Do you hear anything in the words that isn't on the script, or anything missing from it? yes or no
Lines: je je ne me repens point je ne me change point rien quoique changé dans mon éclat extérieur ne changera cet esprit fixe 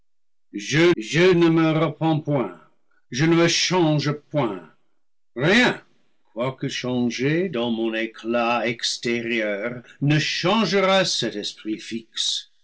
no